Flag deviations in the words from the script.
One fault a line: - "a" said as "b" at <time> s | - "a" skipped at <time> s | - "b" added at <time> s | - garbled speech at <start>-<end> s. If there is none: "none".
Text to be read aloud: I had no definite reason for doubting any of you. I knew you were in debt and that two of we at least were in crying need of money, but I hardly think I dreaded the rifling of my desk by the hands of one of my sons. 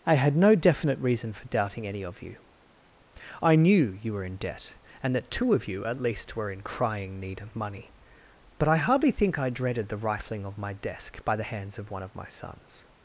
- "we" said as "you" at 5.7 s